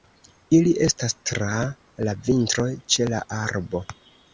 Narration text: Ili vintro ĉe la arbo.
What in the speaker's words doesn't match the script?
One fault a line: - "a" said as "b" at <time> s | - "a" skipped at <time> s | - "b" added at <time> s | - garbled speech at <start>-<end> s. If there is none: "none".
- "estas tra la" added at 0.8 s